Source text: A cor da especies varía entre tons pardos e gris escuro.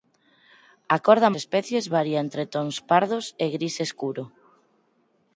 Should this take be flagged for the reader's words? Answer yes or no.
no